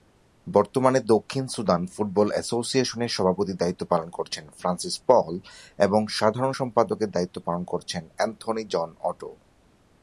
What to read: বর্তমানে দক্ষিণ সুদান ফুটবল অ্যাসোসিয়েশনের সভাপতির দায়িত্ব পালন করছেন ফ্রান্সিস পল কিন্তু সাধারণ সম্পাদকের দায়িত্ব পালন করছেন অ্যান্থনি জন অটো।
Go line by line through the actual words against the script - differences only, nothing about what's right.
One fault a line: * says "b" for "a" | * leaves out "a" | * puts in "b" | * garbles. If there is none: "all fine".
* says "এবং" for "কিন্তু"